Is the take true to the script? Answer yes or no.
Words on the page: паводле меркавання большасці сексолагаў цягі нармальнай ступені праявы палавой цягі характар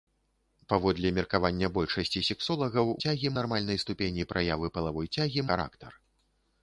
yes